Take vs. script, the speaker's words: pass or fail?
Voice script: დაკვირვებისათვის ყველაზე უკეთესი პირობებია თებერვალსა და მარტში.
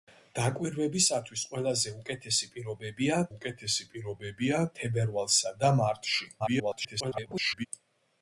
fail